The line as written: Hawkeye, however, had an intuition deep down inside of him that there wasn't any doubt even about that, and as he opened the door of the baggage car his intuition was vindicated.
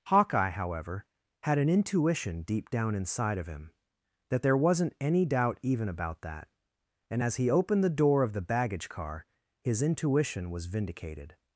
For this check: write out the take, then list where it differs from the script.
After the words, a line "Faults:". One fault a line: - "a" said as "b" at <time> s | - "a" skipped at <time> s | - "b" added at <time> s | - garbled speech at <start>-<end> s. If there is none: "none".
Hawkeye, however, had an intuition deep down inside of him that there wasn't any doubt even about that, and as he opened the door of the baggage car his intuition was vindicated.
Faults:
none